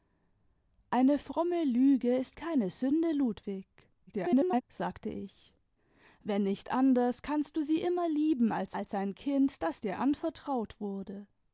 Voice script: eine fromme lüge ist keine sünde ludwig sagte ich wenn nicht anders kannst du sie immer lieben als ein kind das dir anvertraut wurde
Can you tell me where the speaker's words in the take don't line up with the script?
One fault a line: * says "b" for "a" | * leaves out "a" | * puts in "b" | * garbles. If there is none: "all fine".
* garbles
* puts in "als"